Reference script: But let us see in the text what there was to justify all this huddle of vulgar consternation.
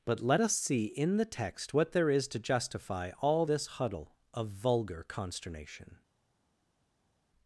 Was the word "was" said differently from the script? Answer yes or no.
yes